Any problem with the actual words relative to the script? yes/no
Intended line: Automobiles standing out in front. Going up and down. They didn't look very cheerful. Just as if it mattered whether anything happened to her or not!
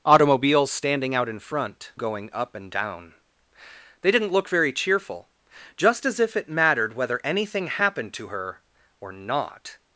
no